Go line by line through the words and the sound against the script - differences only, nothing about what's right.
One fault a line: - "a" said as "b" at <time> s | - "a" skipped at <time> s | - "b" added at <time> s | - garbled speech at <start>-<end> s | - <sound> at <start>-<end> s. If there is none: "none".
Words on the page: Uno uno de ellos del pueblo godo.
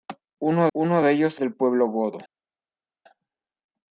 none